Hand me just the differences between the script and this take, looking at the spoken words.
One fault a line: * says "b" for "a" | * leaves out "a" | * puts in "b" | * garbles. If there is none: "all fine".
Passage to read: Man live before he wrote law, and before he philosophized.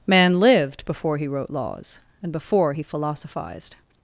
* says "lived" for "live"
* says "laws" for "law"